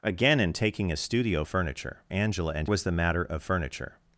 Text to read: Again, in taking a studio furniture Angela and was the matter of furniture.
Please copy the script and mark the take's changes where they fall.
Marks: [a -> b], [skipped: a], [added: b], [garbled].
Again, in taking a studio furniture Angela and was the matter of furniture.